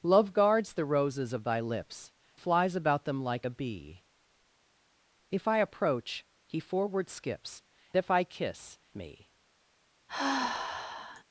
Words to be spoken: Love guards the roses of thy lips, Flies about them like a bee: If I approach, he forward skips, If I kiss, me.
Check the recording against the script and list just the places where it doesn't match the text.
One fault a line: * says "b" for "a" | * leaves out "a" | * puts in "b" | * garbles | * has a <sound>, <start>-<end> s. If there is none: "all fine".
* has a sigh, 10.1-11.2 s